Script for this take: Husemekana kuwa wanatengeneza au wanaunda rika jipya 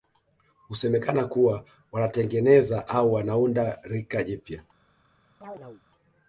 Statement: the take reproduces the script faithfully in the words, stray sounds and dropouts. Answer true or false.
false